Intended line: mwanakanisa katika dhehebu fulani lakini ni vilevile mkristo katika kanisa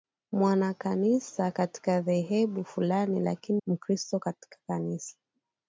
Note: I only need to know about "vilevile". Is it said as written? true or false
false